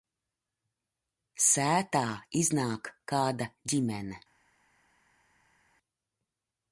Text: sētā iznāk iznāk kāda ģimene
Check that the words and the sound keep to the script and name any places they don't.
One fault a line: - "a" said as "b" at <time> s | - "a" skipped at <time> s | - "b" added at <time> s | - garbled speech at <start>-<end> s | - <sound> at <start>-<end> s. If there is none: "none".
- "iznāk" skipped at 2.9 s